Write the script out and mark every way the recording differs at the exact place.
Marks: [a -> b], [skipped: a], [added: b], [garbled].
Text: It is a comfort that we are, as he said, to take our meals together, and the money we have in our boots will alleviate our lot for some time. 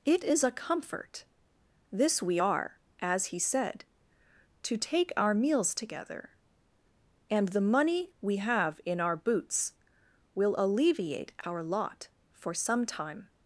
It is a comfort [that -> this] we are, as he said, to take our meals together, and the money we have in our boots will alleviate our lot for some time.